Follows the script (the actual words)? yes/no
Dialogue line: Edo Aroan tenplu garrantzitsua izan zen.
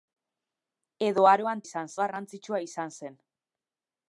no